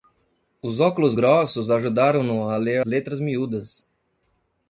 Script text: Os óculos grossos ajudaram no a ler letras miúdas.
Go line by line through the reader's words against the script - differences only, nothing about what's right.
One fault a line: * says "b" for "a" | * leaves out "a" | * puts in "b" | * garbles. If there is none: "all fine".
all fine